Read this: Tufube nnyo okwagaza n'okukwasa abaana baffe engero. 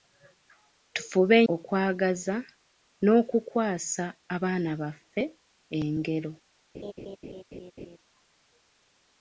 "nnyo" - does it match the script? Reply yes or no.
no